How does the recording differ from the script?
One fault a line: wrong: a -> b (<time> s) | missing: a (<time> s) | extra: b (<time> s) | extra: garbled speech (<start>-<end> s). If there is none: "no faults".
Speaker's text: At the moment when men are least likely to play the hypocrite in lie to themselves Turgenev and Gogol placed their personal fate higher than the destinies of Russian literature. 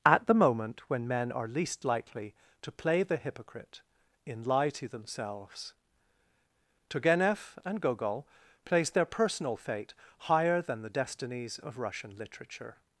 no faults